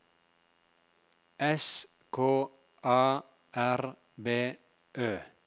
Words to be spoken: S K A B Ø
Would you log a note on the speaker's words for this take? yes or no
yes